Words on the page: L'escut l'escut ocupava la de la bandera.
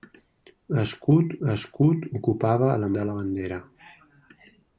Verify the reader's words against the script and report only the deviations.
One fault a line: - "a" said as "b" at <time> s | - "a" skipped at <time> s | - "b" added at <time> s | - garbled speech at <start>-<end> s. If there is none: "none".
none